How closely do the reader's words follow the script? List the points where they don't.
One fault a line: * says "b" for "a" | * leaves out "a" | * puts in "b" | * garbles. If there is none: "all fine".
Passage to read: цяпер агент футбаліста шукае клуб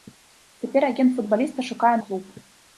all fine